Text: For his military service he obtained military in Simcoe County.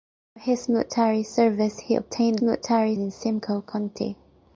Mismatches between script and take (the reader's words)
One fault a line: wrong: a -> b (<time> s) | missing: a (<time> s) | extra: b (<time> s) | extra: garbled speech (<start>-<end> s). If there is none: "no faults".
no faults